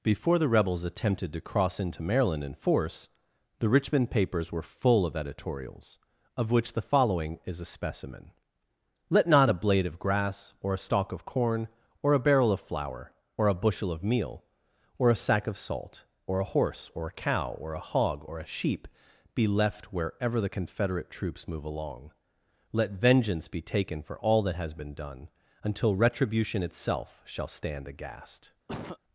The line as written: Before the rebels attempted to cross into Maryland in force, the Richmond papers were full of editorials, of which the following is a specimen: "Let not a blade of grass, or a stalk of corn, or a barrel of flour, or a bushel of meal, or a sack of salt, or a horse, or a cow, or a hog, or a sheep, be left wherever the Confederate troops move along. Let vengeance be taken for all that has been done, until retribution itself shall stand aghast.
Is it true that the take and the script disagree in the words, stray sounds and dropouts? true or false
true